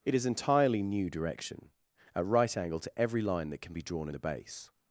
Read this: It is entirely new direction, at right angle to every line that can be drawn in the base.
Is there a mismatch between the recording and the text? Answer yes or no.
no